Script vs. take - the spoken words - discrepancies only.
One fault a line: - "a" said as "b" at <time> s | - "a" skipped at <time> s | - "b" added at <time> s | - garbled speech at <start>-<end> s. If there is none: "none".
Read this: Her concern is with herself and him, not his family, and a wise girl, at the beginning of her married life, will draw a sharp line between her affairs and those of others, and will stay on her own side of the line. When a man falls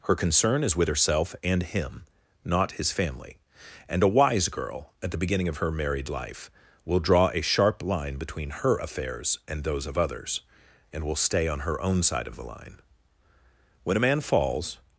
none